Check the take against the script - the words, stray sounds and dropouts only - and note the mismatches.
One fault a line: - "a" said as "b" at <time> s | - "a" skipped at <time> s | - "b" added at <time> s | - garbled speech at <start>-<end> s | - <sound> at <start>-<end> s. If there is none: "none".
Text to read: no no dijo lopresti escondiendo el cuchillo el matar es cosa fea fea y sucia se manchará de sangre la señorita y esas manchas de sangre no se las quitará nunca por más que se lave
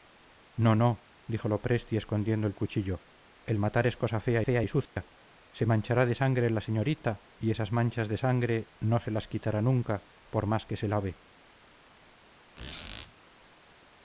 - dropout at 4.9-5.0 s
- squeak at 12.6-13.1 s